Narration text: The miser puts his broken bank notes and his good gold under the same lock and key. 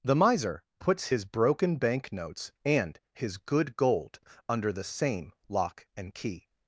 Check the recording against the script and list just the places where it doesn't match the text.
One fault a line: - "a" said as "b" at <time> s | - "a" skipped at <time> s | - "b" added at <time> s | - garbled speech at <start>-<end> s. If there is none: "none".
none